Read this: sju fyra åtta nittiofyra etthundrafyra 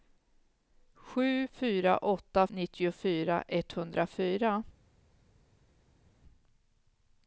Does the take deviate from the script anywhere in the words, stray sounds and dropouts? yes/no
no